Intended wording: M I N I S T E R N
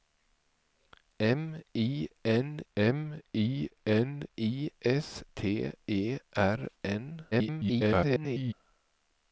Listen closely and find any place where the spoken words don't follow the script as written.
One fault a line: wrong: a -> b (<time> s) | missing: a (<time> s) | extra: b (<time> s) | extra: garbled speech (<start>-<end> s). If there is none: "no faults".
extra: m I N (2.8 s)
extra: garbled speech (7.3-8.5 s)